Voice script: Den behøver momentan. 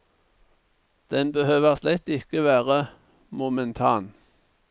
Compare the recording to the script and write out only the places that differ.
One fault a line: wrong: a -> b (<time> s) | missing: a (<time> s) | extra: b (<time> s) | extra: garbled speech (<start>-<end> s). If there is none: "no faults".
extra: slett ikke være (1.7 s)